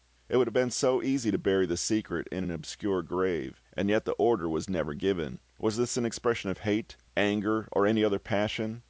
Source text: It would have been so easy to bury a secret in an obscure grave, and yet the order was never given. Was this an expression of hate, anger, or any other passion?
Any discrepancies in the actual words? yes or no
yes